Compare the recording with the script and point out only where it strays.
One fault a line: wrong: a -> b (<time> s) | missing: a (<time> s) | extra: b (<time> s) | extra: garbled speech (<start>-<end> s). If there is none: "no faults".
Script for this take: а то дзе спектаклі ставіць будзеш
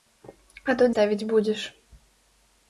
missing: дзе спектаклі (0.9 s)